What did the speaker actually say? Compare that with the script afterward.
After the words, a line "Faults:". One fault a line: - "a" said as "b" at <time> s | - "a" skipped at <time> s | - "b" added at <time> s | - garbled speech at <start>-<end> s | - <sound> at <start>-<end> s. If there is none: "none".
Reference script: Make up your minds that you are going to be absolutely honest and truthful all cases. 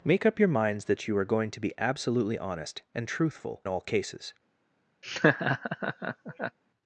Make up your minds that you are going to be absolutely honest and truthful all cases.
Faults:
- laugh at 5.0-6.6 s